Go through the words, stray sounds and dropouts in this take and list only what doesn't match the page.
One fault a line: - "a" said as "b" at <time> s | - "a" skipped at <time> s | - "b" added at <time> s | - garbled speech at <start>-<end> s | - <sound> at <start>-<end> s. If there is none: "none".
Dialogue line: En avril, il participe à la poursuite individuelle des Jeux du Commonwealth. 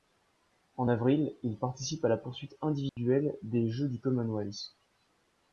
- dropout at 2.9-3.0 s